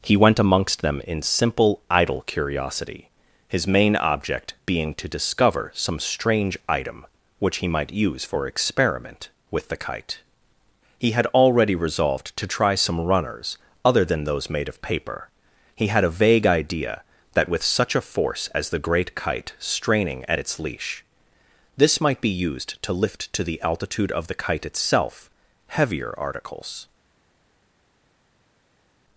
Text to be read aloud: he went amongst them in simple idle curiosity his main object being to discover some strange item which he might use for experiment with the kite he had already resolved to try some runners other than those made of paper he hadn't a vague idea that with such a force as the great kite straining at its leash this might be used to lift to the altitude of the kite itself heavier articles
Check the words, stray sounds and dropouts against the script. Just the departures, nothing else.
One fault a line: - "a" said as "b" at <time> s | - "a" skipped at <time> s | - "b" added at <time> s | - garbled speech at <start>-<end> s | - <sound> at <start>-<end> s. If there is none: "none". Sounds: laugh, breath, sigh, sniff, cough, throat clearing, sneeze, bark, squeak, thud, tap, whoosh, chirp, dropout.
- "hadn't" said as "had" at 15.9 s